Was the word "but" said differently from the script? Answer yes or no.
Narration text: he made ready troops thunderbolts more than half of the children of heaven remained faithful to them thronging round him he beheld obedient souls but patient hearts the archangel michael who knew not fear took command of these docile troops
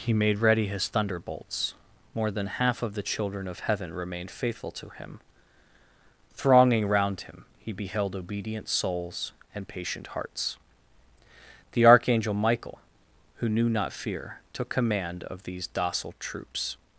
yes